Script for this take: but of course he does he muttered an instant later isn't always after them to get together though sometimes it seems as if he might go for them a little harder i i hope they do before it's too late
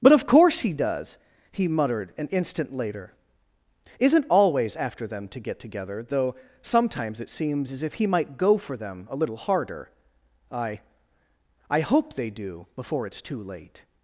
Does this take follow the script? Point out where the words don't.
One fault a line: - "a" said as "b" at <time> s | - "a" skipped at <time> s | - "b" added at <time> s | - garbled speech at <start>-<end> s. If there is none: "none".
none